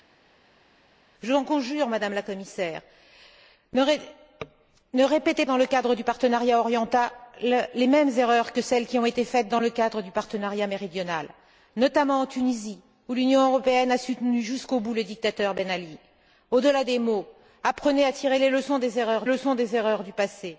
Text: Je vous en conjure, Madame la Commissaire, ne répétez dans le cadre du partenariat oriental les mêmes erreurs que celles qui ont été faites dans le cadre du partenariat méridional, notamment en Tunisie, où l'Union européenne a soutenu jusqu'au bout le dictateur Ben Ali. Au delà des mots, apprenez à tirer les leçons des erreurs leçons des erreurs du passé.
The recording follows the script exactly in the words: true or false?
true